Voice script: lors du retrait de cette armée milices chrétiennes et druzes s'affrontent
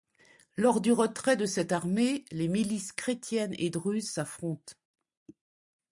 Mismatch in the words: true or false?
true